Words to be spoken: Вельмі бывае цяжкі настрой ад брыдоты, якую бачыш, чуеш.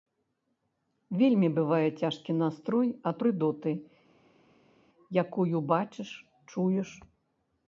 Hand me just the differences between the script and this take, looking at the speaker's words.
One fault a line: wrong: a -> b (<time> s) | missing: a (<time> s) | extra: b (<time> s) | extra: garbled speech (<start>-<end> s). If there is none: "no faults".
no faults